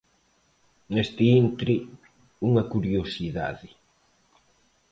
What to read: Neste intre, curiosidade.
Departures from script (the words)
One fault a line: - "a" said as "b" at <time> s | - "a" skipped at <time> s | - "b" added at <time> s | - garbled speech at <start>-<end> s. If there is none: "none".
- "unha" added at 2.5 s